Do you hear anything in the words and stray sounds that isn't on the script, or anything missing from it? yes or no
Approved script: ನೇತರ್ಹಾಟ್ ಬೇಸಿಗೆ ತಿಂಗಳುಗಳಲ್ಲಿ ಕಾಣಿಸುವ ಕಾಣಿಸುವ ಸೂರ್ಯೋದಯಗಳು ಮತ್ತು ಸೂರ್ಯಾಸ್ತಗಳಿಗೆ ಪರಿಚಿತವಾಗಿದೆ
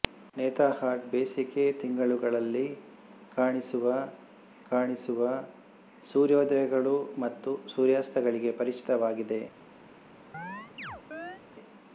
yes